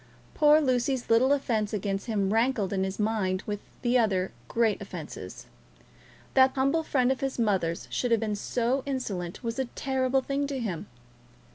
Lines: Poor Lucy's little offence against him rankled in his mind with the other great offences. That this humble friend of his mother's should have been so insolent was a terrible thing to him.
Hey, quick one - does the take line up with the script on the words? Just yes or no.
no